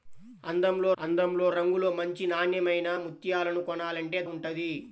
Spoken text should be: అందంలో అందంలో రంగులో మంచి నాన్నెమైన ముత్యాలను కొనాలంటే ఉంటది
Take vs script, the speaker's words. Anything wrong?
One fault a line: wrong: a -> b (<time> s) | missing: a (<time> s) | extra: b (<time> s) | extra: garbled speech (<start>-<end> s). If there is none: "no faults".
no faults